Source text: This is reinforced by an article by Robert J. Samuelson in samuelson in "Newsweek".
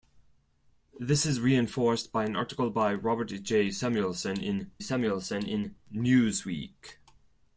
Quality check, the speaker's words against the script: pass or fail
pass